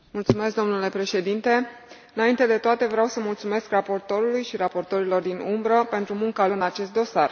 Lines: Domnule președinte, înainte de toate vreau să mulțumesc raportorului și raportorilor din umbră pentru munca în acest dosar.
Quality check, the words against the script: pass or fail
pass